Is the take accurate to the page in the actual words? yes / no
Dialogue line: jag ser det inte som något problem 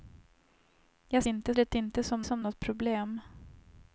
no